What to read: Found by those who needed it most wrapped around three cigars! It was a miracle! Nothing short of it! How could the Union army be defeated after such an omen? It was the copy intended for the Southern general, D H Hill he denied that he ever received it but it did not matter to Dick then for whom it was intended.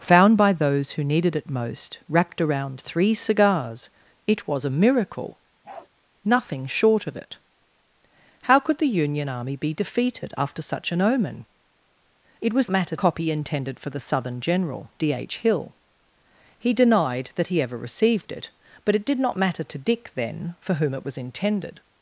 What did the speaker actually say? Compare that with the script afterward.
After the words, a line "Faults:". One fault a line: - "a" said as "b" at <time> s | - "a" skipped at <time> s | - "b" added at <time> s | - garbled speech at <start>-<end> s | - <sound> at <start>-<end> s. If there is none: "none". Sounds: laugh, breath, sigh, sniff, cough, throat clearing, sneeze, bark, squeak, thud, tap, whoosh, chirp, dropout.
Found by those who needed it most wrapped around three cigars! It was a miracle! Nothing short of it! How could the Union army be defeated after such an omen? It was matter copy intended for the Southern general, D H Hill he denied that he ever received it but it did not matter to Dick then for whom it was intended.
Faults:
- bark at 5.6-5.9 s
- "the" said as "matter" at 12.7 s